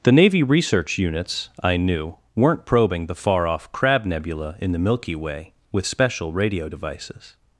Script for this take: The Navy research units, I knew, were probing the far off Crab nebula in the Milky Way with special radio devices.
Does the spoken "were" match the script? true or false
false